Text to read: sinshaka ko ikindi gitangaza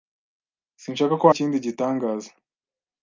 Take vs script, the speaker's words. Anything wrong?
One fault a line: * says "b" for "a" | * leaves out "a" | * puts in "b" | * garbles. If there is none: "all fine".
all fine